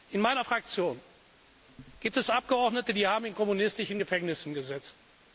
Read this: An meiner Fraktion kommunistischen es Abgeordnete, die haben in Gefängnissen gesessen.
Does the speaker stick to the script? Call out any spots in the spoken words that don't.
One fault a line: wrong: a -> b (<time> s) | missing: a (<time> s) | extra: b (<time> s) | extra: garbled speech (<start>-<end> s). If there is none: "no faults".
wrong: An -> In (0.1 s)
wrong: kommunistischen -> gibt (2.0 s)
extra: kommunistischen (3.3 s)